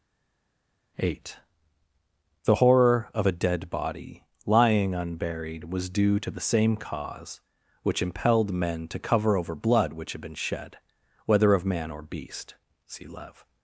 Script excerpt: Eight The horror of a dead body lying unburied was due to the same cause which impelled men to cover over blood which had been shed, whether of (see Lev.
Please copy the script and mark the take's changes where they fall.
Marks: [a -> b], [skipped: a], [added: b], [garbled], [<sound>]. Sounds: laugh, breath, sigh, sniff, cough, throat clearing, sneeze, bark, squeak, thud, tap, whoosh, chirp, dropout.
Eight The horror of a dead body lying unburied was due to the same cause which impelled men to cover over blood which had been shed, whether of [added: man or beast] (see Lev.